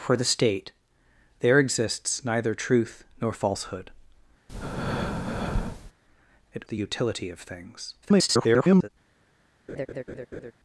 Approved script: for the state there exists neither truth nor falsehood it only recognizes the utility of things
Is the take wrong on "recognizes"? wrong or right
wrong